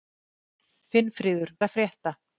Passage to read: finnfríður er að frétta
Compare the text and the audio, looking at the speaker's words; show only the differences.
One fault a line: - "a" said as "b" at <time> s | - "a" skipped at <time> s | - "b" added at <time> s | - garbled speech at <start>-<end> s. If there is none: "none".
none